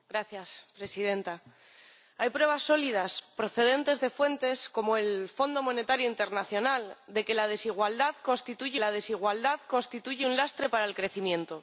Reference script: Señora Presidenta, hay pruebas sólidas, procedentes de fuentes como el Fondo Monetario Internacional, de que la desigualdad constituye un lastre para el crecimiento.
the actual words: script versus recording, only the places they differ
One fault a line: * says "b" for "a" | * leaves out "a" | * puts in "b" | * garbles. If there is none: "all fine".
* puts in "la desigualdad constituye"